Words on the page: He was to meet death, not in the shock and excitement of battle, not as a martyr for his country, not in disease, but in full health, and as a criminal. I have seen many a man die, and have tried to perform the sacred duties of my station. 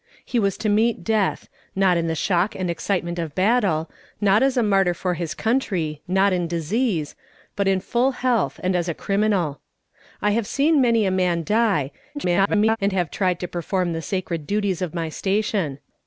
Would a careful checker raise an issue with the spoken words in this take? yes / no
yes